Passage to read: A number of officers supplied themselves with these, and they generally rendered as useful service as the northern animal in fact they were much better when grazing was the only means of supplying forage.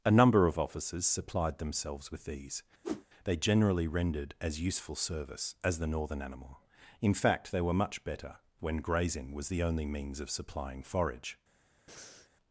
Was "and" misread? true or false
true